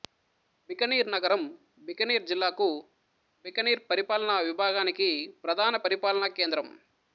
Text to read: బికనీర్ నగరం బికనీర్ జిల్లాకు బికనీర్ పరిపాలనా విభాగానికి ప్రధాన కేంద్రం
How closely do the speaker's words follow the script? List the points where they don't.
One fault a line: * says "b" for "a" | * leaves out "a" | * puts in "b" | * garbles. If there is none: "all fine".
* puts in "పరిపాలనా"